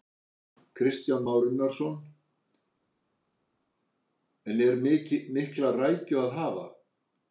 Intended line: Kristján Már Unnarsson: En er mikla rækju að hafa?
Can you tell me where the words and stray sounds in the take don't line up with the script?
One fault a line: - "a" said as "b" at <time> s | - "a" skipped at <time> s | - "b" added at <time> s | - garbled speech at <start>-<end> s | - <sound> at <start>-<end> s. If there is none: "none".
none